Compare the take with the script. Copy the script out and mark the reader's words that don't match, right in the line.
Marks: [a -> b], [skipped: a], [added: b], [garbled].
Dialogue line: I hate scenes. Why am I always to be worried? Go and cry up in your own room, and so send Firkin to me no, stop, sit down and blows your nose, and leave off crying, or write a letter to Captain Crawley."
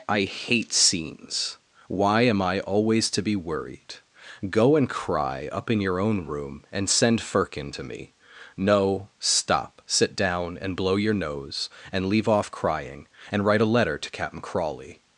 I hate scenes. Why am I always to be worried? Go and cry up in your own room, and [skipped: so] send Firkin to me no, stop, sit down and [blows -> blow] your nose, and leave off crying, [or -> and] write a letter to Captain Crawley."